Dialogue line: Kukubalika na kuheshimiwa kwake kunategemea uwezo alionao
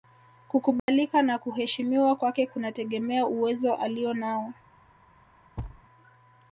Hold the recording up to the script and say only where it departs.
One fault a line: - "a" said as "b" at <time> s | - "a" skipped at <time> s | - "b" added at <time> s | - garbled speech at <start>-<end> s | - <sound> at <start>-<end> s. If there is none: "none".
- dropout at 0.8-0.9 s
- thud at 5.6-5.8 s